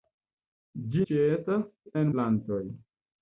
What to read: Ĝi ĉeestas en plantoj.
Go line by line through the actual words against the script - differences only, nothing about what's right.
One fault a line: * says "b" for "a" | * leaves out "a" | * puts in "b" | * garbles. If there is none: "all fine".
all fine